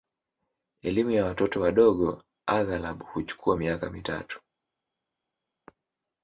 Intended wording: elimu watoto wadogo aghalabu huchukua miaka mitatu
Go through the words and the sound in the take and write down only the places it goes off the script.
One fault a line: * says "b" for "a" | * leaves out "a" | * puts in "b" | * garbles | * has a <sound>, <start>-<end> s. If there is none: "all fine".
* puts in "ya"